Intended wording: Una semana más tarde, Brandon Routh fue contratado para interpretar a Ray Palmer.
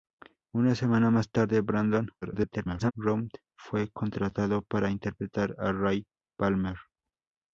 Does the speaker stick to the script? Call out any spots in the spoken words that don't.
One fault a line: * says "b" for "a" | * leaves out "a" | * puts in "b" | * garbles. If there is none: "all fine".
* garbles